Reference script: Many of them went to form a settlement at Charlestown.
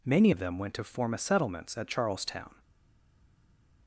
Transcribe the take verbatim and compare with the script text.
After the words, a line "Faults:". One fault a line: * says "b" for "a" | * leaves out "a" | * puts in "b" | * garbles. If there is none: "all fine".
Many of them went to form a settlements at Charlestown.
Faults:
* says "settlements" for "settlement"